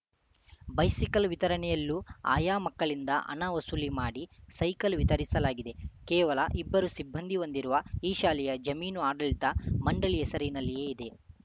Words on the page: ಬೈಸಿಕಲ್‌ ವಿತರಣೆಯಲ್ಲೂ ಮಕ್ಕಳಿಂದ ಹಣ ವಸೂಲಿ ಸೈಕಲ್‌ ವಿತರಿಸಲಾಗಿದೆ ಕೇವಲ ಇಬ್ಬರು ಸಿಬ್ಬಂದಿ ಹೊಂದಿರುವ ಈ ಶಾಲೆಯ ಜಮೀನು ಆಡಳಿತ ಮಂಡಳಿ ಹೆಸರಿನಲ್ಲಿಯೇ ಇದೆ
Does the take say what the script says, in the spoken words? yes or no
no